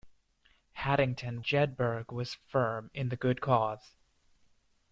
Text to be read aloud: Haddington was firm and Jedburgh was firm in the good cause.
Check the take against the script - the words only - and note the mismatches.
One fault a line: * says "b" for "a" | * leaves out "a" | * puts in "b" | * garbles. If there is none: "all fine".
* leaves out "was firm and"